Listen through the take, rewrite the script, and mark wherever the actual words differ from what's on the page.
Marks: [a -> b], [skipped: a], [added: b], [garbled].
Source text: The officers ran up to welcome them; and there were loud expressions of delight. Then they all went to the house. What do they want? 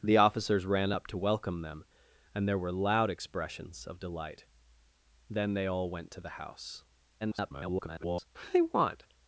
The officers ran up to welcome them; and there were loud expressions of delight. Then they all went to the house. [garbled] What do they want?